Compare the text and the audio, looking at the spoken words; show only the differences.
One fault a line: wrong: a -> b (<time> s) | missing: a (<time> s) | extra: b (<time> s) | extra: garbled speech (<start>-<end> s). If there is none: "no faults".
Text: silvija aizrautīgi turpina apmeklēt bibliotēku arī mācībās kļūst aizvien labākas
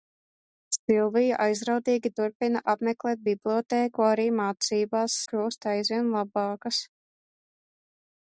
no faults